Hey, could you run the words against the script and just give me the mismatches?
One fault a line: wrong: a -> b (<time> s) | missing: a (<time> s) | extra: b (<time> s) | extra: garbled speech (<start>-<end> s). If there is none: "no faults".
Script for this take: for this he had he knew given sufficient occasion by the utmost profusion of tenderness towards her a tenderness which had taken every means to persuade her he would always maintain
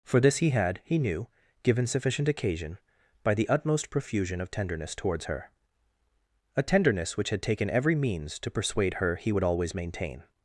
no faults